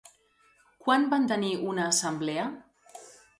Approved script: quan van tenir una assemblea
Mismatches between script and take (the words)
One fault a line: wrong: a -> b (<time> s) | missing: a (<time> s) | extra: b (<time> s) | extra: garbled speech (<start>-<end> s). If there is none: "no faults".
no faults